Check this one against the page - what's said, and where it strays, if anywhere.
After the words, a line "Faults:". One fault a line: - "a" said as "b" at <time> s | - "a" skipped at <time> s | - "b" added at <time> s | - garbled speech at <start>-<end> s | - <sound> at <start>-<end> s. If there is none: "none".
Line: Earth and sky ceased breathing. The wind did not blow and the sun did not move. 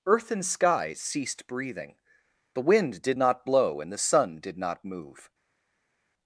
Earth and sky ceased breathing. The wind did not blow and the sun did not move.
Faults:
none